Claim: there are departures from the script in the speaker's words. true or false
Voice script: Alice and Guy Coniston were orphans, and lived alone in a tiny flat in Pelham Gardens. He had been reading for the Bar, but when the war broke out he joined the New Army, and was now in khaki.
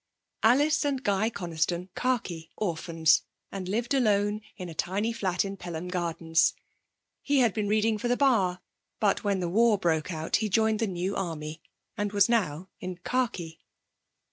true